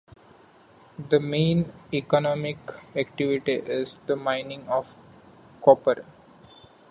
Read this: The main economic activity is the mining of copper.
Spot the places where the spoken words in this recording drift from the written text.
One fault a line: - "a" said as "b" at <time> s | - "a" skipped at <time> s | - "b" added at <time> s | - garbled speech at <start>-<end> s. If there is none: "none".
none